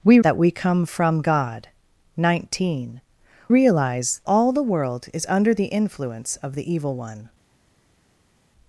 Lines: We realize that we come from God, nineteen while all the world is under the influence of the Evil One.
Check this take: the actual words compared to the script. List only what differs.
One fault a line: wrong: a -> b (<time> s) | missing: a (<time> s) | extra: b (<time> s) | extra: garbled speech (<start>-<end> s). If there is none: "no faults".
missing: realize (0.2 s)
wrong: while -> realize (3.5 s)